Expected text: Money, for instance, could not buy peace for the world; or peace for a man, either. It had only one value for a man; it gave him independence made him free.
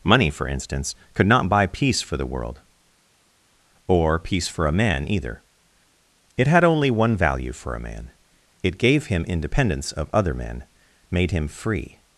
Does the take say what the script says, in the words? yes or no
no